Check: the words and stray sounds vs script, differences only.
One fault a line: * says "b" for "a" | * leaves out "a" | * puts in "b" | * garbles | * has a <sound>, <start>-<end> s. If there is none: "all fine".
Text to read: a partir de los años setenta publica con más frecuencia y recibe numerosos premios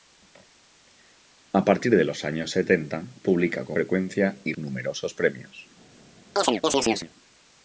* leaves out "más"
* leaves out "recibe"
* has a chirp, 6.4-7.1 s